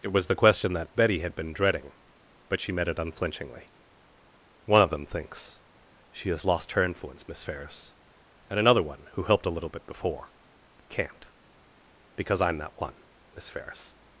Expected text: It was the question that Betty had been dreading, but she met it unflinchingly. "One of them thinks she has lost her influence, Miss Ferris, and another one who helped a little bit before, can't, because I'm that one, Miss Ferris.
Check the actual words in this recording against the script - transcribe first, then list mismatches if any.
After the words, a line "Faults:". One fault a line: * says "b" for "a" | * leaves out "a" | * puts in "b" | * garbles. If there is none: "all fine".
It was the question that Betty had been dreading, but she met it unflinchingly. "One of them thinks she has lost her influence, Miss Ferris, and another one who helped a little bit before, can't, because I'm that one, Miss Ferris.
Faults:
all fine